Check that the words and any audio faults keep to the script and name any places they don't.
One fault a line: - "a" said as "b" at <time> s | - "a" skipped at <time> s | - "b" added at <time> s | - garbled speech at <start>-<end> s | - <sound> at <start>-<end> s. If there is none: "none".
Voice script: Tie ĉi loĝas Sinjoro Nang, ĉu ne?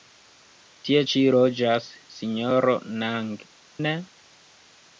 - "ĉu" skipped at 3.3 s